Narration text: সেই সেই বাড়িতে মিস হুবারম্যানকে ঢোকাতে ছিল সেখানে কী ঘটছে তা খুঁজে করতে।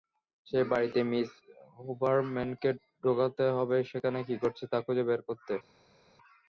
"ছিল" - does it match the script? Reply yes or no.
no